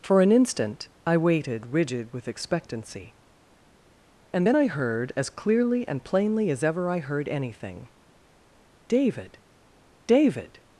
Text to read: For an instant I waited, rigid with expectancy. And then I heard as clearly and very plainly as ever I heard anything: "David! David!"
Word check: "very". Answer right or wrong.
wrong